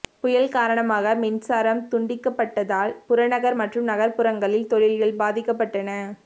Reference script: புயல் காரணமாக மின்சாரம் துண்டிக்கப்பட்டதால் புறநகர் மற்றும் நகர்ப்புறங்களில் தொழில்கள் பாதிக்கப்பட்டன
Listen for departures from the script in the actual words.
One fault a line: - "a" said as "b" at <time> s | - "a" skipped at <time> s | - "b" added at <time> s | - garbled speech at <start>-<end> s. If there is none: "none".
none